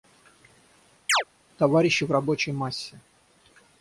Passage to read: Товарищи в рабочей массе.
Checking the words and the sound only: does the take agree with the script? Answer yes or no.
no